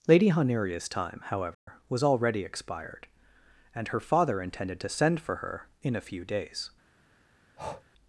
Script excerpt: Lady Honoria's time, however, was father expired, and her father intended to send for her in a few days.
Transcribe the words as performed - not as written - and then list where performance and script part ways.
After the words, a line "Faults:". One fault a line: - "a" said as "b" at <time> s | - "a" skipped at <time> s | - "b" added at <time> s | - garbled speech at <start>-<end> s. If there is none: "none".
Lady Honoria's time, however, was already expired, and her father intended to send for her in a few days.
Faults:
- "father" said as "already" at 2.0 s